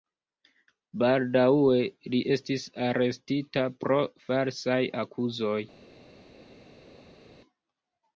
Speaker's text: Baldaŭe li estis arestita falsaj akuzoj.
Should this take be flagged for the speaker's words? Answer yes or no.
yes